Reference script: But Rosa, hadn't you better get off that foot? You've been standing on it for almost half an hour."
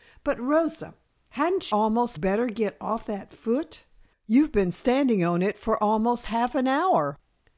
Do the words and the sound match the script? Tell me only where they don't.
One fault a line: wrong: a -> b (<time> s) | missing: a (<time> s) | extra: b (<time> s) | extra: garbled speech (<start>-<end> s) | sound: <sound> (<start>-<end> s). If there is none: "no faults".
wrong: you -> almost (1.7 s)